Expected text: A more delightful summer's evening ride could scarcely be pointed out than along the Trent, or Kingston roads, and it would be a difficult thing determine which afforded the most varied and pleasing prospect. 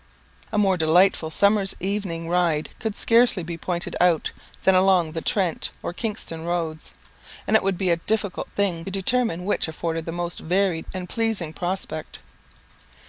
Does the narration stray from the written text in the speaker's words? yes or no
no